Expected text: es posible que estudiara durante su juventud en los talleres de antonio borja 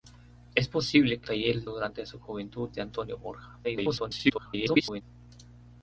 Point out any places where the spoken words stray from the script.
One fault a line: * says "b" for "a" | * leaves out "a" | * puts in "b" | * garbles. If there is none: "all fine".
* says "talleres" for "estudiara"
* leaves out "en los talleres"
* garbles